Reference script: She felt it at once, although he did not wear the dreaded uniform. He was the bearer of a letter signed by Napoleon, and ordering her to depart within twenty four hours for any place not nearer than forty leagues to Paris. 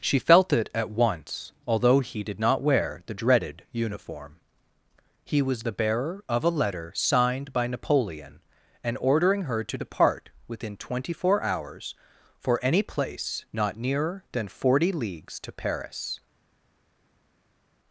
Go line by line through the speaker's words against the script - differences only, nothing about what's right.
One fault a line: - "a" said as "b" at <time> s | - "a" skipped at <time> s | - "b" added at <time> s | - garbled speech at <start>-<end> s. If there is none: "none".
none